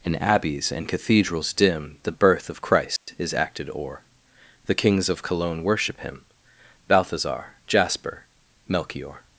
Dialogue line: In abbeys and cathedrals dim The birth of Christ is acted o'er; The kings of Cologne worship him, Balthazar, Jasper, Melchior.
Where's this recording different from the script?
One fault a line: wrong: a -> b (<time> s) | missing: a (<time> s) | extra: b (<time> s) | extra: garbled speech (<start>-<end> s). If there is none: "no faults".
no faults